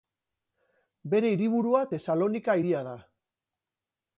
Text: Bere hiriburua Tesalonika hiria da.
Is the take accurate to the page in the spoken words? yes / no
yes